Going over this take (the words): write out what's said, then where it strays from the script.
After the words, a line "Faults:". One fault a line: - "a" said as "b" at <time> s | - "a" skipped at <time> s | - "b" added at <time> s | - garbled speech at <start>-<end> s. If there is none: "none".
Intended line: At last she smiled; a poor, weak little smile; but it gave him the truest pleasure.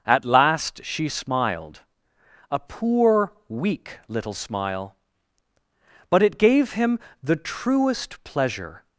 At last she smiled; a poor, weak little smile; but it gave him the truest pleasure.
Faults:
none